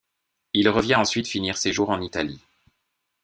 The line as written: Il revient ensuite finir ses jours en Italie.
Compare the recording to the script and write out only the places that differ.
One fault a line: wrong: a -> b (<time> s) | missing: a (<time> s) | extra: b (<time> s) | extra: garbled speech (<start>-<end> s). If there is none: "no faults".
no faults